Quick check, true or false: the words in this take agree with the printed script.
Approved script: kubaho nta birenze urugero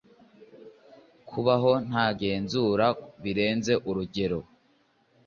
false